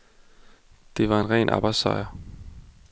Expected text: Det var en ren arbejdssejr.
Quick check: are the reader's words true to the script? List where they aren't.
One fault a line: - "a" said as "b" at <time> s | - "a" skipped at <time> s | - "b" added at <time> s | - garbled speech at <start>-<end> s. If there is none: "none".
none